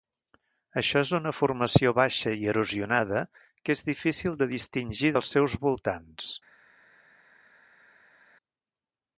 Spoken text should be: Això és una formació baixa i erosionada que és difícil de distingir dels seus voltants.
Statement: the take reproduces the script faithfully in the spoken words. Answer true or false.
true